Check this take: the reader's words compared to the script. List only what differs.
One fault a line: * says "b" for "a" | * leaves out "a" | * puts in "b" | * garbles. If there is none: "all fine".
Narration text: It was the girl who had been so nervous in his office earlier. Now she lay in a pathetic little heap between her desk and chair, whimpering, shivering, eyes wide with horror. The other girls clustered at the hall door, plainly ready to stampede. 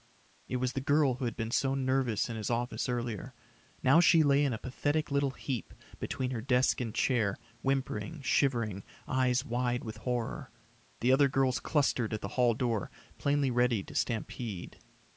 all fine